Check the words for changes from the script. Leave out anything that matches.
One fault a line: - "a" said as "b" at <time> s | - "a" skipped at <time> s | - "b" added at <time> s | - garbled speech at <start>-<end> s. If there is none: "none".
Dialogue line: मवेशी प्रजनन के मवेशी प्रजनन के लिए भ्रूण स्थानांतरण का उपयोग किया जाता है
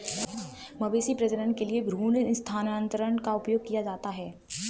- "मवेशी प्रजनन के" skipped at 1.6 s